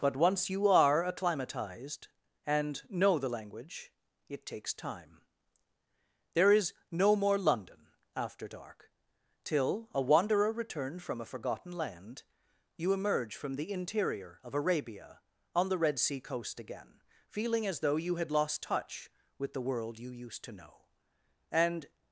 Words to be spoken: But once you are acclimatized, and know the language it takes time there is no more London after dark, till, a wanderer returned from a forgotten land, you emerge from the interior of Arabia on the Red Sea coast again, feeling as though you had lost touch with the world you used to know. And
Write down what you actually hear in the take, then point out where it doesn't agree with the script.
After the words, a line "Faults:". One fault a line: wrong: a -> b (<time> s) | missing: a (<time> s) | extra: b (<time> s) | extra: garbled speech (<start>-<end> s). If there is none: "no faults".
But once you are acclimatized, and know the language it takes time there is no more London after dark, till, a wanderer returned from a forgotten land, you emerge from the interior of Arabia on the Red Sea coast again, feeling as though you had lost touch with the world you used to know. And
Faults:
no faults